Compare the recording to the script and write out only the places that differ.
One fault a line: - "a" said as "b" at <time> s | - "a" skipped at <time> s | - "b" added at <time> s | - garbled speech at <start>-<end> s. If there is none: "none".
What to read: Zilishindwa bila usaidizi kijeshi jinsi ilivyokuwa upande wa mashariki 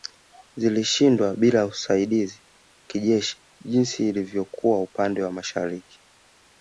none